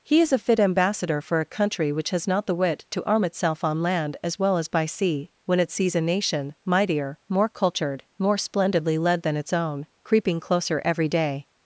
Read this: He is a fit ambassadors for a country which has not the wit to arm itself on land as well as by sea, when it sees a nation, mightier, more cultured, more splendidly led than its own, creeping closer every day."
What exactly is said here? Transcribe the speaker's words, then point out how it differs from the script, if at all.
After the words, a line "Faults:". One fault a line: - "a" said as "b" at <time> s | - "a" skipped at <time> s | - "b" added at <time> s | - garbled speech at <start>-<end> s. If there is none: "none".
He is a fit ambassador for a country which has not the wit to arm itself on land as well as by sea, when it sees a nation, mightier, more cultured, more splendidly led than its own, creeping closer every day."
Faults:
- "ambassadors" said as "ambassador" at 0.6 s